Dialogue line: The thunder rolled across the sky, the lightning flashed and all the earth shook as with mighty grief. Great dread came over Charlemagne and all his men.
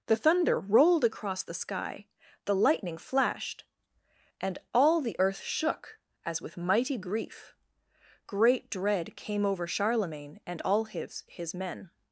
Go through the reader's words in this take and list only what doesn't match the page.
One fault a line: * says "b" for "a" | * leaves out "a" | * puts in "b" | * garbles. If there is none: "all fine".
* puts in "his"